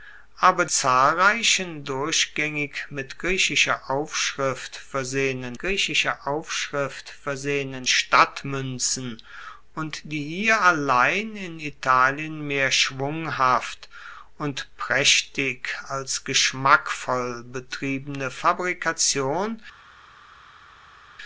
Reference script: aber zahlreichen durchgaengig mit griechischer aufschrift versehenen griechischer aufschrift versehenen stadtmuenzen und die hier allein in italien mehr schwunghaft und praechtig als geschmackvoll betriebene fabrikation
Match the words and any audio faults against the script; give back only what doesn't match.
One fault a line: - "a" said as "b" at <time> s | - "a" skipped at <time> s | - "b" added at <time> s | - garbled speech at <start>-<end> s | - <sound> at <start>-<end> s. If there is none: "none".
none